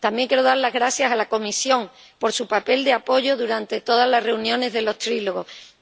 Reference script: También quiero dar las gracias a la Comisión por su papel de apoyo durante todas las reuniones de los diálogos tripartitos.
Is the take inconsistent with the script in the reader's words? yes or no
no